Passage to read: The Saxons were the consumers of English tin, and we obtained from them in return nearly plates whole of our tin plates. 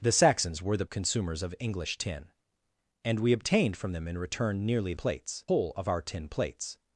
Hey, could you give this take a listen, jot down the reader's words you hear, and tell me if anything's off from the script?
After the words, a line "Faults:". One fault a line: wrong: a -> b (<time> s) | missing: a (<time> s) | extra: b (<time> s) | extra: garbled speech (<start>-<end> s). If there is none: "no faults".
The Saxons were the consumers of English tin, and we obtained from them in return nearly plates whole of our tin plates.
Faults:
no faults